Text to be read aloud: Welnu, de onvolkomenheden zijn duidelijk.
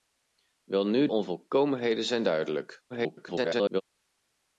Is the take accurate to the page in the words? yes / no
no